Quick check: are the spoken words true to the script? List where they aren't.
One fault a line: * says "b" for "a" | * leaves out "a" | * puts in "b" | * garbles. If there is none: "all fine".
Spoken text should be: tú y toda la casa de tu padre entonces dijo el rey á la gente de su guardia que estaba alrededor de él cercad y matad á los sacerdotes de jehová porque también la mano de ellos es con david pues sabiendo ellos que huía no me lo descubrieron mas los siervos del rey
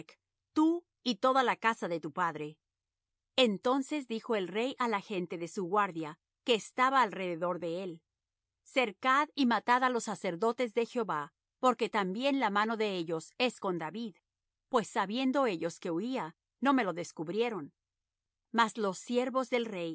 all fine